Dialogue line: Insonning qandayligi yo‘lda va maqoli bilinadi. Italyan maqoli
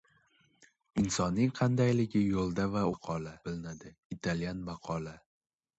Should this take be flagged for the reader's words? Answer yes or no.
no